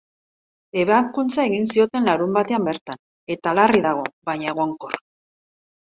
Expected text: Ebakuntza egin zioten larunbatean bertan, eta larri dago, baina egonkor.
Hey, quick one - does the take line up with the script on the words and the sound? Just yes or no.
yes